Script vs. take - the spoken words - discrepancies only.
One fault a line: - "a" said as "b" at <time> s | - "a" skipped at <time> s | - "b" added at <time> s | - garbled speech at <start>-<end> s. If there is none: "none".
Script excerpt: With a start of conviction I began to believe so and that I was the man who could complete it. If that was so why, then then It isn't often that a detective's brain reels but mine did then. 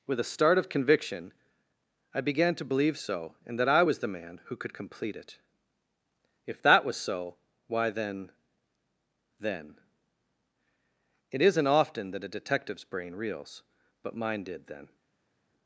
none